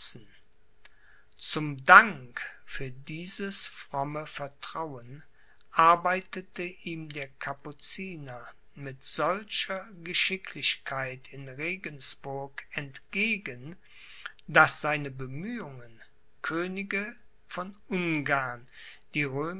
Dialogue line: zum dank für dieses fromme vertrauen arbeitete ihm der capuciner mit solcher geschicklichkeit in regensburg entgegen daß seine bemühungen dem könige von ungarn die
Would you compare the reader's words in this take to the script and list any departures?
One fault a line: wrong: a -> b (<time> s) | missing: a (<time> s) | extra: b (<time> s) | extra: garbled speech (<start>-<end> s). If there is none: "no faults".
missing: dem (16.0 s)